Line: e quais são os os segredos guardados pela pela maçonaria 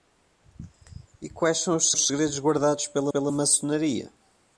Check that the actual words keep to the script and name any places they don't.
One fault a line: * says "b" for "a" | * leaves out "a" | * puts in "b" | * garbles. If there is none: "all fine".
all fine